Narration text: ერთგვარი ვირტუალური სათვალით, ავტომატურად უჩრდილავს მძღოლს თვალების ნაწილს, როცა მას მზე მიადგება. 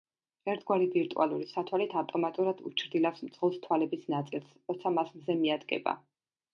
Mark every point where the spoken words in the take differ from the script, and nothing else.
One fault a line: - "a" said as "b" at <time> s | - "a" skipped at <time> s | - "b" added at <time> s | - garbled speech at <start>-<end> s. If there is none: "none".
none